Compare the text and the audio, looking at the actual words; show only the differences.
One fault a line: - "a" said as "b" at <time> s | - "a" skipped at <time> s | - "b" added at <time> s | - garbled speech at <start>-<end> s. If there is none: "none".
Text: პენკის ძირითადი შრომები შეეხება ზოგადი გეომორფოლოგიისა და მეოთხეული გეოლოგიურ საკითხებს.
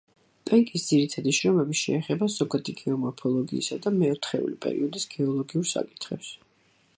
- "პერიოდის" added at 4.7 s